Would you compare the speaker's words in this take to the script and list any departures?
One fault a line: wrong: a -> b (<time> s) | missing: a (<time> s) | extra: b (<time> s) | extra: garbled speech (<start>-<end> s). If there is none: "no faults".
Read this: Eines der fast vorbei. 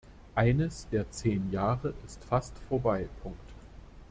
extra: zehn Jahre ist (1.1 s)